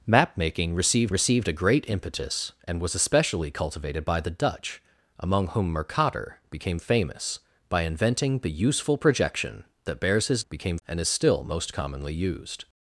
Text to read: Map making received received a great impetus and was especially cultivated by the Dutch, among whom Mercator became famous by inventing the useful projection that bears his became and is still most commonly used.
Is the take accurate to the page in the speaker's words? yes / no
yes